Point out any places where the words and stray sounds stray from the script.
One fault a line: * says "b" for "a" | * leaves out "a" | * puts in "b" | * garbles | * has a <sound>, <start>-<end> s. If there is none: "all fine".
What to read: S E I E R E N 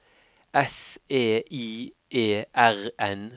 * leaves out "E"